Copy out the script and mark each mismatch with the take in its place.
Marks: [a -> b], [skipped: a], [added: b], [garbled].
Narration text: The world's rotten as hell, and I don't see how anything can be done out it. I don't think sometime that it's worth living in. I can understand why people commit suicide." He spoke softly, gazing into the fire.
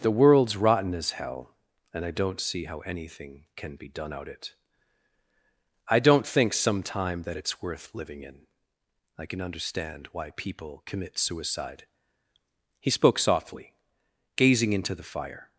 The world's rotten as hell, and I don't see how anything can be done out it. I don't think sometime that it's worth living in. I can understand why people commit suicide." He spoke softly, gazing into the fire.